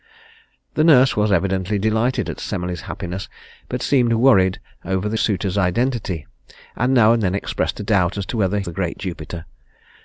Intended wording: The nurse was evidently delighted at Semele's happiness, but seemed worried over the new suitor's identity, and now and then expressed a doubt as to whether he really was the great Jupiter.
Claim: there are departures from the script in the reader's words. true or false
true